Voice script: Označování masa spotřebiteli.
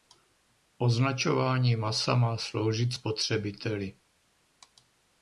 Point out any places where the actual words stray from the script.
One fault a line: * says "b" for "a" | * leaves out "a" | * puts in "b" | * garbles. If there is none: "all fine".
* puts in "má sloužit"